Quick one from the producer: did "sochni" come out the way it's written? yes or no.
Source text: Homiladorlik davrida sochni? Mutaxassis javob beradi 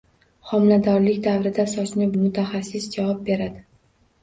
yes